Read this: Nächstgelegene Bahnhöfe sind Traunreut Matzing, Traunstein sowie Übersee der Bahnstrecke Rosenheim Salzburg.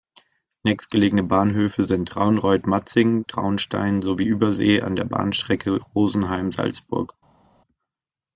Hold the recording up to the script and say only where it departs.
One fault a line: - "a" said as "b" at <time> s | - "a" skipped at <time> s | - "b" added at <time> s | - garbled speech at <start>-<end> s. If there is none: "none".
- "an" added at 4.8 s